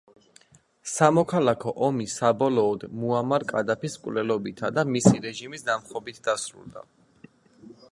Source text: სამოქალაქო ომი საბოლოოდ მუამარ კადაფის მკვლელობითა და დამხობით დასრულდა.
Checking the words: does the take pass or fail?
fail